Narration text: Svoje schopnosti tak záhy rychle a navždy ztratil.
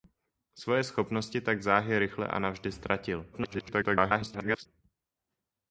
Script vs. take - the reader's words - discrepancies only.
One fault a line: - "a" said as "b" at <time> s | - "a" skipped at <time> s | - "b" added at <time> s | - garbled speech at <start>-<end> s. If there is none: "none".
- garbled speech at 3.3-4.7 s